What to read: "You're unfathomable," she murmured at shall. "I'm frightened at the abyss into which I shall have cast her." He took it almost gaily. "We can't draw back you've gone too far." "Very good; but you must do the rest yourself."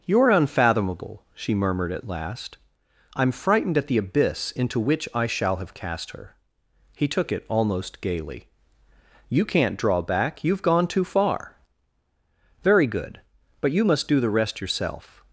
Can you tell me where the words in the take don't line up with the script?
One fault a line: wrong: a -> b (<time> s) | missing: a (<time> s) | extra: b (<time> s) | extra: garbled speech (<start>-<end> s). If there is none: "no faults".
wrong: shall -> last (2.1 s)
wrong: We -> You (9.3 s)